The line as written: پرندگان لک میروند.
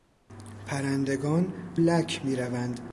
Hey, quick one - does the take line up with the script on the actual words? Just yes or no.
yes